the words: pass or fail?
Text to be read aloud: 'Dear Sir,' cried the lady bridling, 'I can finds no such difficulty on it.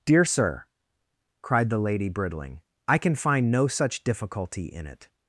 fail